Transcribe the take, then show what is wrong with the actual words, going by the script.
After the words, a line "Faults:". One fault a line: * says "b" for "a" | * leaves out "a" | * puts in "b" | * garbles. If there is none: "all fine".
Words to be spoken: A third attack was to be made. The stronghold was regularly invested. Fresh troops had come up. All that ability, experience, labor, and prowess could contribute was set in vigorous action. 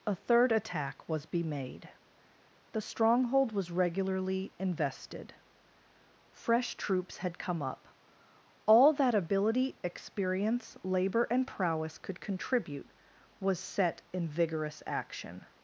A third attack was be made. The stronghold was regularly invested. Fresh troops had come up. All that ability, experience, labor, and prowess could contribute was set in vigorous action.
Faults:
* leaves out "to"